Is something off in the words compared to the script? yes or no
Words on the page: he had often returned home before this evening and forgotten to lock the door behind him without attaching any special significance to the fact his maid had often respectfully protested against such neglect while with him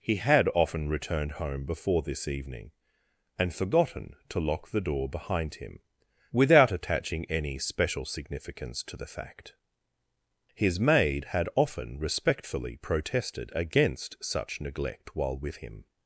no